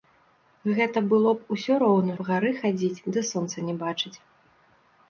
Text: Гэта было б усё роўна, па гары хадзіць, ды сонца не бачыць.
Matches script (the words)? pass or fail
pass